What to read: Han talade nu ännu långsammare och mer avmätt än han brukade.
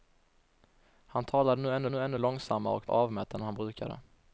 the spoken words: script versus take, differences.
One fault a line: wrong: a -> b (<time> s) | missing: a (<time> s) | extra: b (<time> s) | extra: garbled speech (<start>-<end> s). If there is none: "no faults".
extra: nu ännu (1.9 s)
missing: mer (2.9 s)